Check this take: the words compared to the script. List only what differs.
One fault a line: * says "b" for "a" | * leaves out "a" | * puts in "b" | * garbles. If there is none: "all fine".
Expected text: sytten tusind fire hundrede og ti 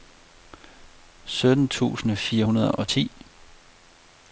all fine